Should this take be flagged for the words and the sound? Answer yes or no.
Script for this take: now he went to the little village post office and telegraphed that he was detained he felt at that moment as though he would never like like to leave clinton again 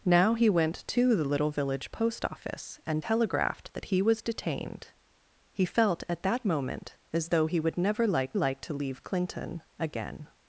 no